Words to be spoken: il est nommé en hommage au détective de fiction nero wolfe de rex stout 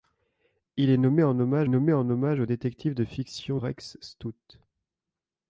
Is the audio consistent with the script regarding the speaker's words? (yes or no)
no